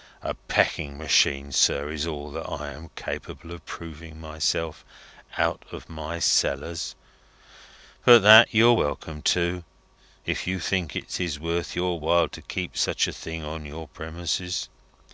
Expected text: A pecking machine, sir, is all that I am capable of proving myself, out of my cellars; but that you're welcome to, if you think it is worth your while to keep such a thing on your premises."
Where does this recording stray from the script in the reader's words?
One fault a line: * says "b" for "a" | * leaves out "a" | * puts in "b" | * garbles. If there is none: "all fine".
all fine